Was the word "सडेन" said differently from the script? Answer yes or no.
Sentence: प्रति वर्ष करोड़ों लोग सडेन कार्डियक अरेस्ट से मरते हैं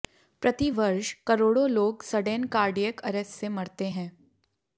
no